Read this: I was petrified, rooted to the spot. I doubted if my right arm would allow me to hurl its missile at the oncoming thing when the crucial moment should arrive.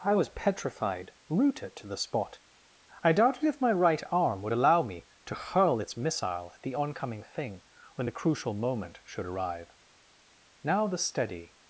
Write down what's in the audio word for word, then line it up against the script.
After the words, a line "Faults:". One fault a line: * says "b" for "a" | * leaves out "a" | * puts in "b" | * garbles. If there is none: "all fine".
I was petrified, rooted to the spot. I doubted if my right arm would allow me to hurl its missile at the oncoming thing when the crucial moment should arrive. Now the steady
Faults:
* puts in "Now the steady"